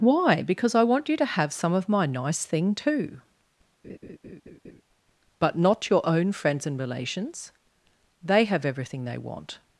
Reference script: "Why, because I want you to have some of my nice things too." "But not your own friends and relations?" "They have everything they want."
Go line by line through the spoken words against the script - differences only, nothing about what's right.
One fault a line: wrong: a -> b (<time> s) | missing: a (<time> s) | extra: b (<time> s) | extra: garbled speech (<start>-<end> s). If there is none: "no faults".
wrong: things -> thing (2.5 s)